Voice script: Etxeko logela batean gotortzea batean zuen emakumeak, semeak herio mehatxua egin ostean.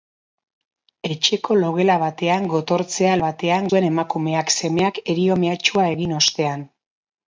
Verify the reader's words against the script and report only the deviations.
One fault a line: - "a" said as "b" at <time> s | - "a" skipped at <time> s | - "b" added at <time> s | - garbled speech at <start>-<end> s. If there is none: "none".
none